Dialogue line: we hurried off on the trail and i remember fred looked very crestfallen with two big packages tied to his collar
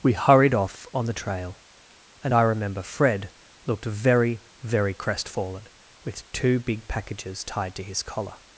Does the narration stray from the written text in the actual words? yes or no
yes